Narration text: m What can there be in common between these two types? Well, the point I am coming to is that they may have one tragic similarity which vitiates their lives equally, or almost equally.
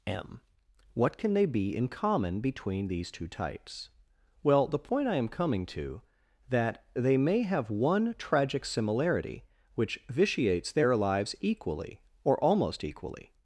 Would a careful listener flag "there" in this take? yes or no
yes